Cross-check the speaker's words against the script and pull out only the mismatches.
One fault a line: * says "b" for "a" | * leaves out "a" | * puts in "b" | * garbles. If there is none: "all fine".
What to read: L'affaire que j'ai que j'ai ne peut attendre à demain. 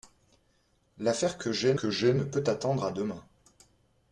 all fine